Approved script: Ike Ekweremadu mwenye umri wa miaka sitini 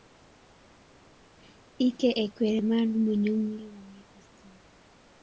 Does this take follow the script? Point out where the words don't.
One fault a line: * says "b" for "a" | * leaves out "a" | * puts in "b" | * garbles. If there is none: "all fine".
all fine